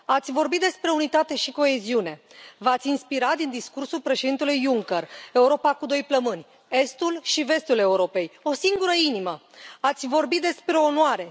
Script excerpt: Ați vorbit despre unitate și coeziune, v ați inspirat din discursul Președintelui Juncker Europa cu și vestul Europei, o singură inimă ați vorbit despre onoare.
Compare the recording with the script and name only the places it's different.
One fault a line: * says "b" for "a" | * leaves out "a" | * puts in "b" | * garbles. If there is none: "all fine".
* puts in "doi plămâni estul"